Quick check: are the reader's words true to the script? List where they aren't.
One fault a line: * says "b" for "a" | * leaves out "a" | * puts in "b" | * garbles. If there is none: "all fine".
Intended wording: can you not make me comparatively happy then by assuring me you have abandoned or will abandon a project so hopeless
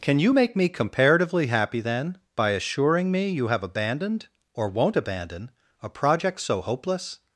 * leaves out "not"
* says "won't" for "will"